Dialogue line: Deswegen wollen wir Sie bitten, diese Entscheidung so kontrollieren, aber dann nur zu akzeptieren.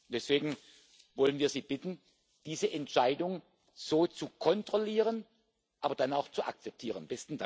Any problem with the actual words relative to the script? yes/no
yes